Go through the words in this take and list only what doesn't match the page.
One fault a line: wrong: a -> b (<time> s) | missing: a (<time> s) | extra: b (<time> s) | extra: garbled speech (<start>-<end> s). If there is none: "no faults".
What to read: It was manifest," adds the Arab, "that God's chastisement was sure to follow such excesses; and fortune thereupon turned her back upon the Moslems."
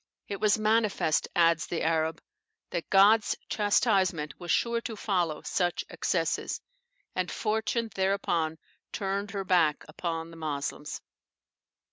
no faults